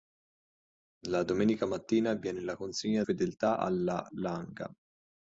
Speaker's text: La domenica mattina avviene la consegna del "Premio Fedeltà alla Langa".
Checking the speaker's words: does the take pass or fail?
fail